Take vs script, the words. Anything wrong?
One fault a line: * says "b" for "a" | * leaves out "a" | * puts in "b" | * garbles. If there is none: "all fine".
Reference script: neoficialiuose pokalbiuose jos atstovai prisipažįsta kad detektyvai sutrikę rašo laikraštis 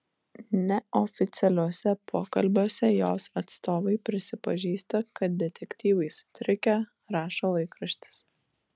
all fine